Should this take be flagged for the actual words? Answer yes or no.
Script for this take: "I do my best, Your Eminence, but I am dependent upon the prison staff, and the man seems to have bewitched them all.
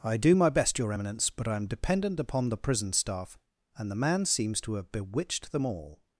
no